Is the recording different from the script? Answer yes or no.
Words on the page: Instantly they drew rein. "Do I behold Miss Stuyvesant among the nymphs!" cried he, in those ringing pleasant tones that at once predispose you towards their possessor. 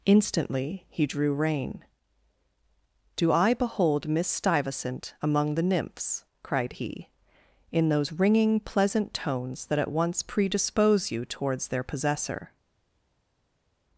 yes